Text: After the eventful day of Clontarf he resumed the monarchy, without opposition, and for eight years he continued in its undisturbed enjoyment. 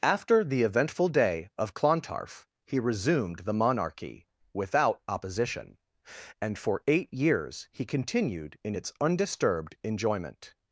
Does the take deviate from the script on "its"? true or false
false